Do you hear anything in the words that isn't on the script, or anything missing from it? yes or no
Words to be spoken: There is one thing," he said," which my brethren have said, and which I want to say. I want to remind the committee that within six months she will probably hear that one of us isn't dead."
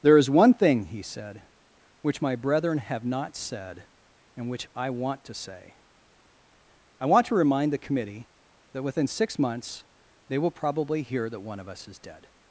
yes